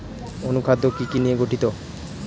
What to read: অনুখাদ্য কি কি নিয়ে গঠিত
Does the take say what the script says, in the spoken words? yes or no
yes